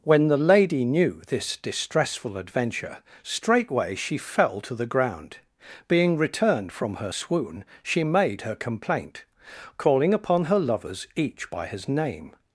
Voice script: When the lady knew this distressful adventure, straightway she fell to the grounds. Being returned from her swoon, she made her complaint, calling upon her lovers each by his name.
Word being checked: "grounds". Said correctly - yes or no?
no